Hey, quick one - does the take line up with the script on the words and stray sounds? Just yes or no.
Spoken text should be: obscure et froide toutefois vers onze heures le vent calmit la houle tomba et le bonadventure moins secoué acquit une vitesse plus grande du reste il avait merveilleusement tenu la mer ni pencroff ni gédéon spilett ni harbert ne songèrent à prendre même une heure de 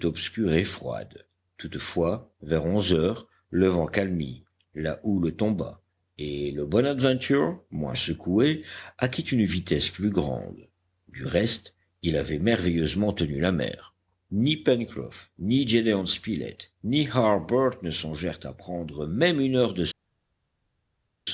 yes